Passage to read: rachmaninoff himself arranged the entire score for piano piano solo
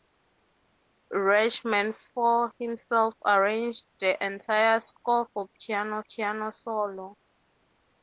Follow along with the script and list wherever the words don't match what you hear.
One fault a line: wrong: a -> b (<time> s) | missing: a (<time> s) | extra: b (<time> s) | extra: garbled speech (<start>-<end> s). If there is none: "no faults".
no faults